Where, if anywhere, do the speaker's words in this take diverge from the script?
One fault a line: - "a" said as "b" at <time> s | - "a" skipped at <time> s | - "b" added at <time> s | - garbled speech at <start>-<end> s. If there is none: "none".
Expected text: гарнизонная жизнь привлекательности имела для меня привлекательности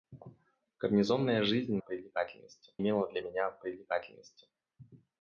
none